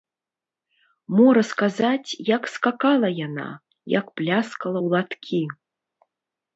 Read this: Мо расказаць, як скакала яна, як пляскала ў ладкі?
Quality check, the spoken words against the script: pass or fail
pass